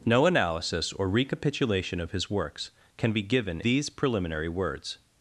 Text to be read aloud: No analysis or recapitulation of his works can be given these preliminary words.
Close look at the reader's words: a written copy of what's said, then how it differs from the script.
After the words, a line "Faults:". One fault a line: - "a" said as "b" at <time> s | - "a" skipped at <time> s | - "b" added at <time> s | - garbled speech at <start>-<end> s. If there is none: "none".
No analysis or recapitulation of his works can be given these preliminary words.
Faults:
none